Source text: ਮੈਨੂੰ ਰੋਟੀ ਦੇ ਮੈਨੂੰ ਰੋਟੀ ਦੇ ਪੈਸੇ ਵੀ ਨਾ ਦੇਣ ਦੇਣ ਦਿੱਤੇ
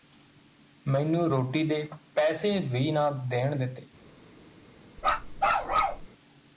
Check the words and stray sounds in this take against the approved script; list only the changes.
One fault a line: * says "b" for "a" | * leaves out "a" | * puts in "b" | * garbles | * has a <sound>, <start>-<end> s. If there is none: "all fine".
* leaves out "ਮੈਨੂੰ ਰੋਟੀ ਦੇ"
* leaves out "ਦੇਣ"
* has a bark, 5.0-6.1 s